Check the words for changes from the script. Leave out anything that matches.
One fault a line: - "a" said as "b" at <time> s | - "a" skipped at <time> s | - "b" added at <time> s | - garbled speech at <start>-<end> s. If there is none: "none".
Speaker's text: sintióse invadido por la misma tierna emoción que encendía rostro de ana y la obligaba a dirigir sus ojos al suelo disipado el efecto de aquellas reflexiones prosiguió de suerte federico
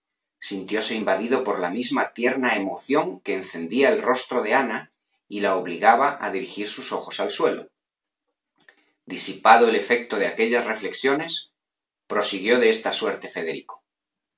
- "el" added at 3.9 s
- "esta" added at 12.7 s